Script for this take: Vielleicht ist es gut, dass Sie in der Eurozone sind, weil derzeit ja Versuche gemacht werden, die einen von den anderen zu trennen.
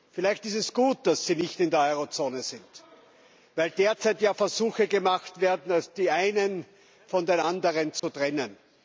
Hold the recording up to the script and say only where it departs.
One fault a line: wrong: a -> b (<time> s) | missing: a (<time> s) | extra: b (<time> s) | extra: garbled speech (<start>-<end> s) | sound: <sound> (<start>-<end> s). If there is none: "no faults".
extra: nicht (1.4 s)
sound: dropout (8.0-8.0 s)